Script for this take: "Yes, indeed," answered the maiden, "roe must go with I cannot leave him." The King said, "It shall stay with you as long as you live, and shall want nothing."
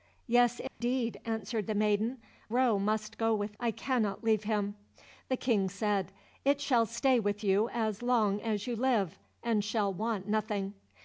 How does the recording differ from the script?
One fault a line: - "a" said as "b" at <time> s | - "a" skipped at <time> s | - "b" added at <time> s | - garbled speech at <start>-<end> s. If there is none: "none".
none